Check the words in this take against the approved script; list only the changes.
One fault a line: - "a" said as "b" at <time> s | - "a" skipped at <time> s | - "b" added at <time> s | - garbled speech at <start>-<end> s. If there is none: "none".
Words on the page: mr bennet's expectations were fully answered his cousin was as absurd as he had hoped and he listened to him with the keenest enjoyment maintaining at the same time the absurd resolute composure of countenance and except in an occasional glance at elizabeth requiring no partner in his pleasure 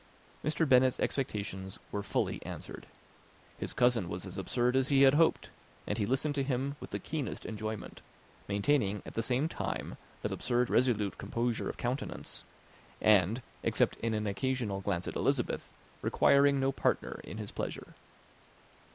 none